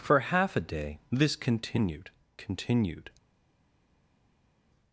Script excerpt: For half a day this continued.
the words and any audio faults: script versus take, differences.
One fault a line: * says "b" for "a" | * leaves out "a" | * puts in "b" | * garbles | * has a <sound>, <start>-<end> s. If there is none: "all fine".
* puts in "continued"